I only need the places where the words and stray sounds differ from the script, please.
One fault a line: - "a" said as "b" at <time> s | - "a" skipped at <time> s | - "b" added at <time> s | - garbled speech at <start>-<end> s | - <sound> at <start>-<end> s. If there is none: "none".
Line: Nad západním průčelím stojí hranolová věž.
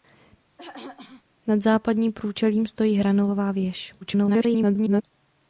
- throat clearing at 0.6-1.2 s
- garbled speech at 4.0-5.0 s